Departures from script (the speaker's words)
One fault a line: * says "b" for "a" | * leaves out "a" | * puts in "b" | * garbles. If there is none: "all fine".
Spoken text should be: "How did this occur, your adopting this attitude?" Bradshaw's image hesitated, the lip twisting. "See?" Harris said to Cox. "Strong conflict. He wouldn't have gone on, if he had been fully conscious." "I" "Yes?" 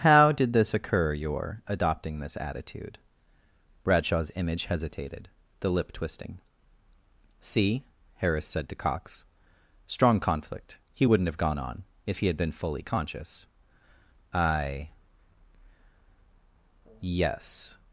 all fine